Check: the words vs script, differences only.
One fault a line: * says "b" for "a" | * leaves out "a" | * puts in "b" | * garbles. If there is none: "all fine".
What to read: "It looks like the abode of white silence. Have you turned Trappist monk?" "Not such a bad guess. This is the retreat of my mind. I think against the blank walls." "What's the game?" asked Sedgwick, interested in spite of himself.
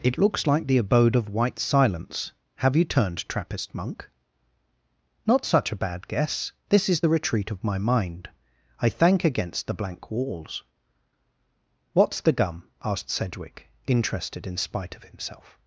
* says "thank" for "think"
* says "gum" for "game"